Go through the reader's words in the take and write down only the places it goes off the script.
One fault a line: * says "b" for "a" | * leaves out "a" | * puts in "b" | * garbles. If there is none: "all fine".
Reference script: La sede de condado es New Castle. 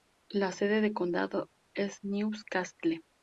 all fine